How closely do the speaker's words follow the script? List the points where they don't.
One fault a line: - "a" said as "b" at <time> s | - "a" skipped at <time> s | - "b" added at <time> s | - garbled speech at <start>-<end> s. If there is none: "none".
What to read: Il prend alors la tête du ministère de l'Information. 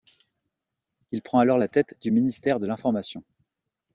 none